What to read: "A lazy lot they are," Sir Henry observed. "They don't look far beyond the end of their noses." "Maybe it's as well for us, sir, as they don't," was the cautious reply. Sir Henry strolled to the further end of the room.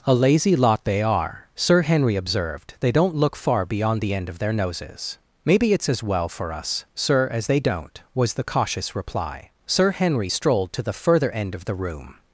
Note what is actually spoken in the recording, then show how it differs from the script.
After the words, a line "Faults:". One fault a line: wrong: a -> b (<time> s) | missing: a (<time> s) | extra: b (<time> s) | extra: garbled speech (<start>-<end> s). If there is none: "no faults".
"A lazy lot they are," Sir Henry observed. "They don't look far beyond the end of their noses." "Maybe it's as well for us, sir, as they don't," was the cautious reply. Sir Henry strolled to the further end of the room.
Faults:
no faults